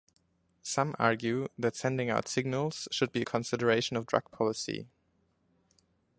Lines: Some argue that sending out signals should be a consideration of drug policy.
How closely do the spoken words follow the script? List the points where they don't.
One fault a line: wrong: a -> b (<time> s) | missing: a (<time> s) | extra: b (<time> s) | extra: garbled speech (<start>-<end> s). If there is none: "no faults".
no faults